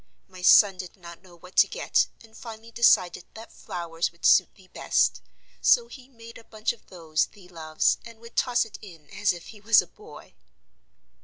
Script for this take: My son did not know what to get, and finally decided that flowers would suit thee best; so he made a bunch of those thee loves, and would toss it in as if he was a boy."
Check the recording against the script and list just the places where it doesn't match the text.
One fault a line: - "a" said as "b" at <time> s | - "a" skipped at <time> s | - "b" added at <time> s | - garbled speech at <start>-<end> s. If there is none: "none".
none